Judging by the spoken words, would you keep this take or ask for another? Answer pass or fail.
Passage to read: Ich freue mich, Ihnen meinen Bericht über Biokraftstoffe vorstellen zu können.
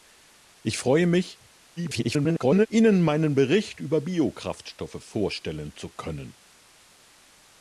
fail